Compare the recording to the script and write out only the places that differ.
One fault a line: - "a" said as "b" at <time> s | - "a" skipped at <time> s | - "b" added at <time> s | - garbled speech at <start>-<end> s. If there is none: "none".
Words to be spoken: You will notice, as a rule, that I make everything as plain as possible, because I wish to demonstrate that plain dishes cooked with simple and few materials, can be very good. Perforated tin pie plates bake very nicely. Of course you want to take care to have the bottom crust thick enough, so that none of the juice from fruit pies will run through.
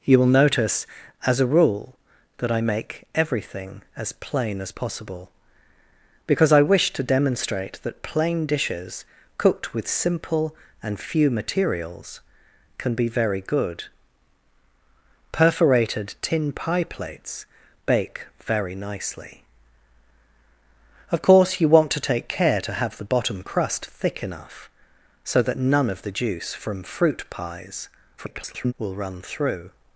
- garbled speech at 28.2-28.7 s